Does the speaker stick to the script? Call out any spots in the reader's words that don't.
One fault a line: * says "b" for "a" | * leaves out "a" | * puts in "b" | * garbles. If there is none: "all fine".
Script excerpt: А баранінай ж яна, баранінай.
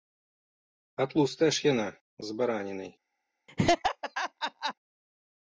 * says "тлустая" for "баранінай"
* puts in "з"